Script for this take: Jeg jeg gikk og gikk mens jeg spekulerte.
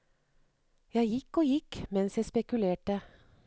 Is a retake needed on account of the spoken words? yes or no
yes